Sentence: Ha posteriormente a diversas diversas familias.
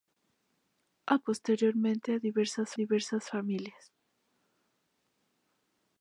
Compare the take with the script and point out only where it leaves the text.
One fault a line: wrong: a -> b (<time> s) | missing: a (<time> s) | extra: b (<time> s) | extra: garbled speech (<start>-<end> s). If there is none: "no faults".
no faults